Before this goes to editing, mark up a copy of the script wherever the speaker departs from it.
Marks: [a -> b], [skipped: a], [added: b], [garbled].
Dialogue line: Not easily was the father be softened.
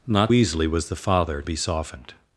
Not easily was the father be softened.